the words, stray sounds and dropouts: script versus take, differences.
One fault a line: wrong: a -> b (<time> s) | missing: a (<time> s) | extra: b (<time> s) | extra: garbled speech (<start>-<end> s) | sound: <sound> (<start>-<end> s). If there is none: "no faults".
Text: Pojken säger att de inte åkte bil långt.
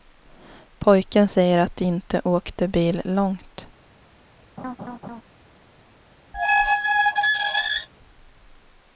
sound: laugh (4.6-5.2 s)
sound: squeak (6.3-7.9 s)